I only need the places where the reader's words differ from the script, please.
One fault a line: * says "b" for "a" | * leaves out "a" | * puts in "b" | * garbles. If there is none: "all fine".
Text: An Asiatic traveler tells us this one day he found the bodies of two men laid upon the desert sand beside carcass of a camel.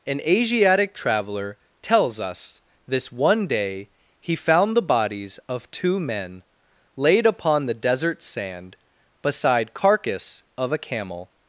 all fine